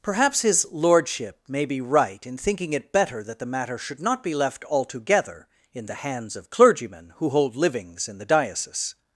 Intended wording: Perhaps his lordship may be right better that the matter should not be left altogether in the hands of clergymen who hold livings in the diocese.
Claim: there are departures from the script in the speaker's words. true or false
true